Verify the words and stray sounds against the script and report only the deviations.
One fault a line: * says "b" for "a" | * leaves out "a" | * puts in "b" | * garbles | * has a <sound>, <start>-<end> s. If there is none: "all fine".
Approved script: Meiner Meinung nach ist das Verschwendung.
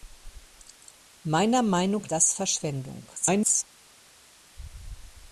* leaves out "nach ist"
* garbles